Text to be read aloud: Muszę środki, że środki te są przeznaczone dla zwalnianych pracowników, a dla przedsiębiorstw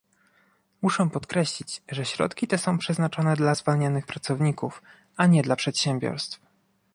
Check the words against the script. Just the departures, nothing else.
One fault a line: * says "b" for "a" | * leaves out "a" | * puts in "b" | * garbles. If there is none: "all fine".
* says "podkreślić" for "środki"
* puts in "nie"